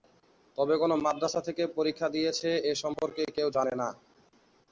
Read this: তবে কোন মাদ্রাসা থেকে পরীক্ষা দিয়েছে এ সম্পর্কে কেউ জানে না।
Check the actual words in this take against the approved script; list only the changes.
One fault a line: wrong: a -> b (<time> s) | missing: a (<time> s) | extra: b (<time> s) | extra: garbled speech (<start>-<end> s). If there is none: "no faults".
no faults